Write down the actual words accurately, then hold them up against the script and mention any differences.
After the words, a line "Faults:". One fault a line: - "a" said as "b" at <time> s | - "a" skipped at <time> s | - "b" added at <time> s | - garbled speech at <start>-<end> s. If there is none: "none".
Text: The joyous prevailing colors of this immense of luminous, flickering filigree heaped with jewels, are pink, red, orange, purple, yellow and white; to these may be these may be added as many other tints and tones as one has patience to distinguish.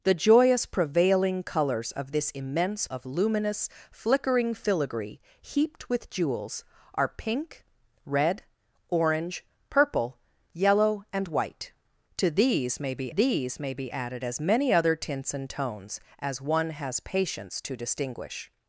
The joyous prevailing colors of this immense of luminous, flickering filigree heaped with jewels, are pink, red, orange, purple, yellow and white; to these may be these may be added as many other tints and tones as one has patience to distinguish.
Faults:
none